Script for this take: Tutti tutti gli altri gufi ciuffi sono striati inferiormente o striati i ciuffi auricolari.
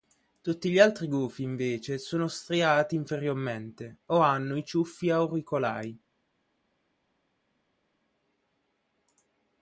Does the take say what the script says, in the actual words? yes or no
no